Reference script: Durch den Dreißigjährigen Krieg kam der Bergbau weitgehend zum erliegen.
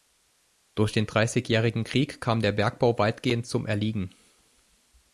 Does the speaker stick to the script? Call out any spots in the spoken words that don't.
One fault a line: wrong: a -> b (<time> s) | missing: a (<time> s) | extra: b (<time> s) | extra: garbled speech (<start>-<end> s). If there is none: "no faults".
no faults